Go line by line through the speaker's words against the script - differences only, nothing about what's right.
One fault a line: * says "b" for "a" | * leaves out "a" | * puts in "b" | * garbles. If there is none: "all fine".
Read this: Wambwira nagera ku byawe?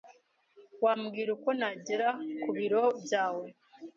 * puts in "uko"
* puts in "biro"